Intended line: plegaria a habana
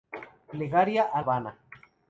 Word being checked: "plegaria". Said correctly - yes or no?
yes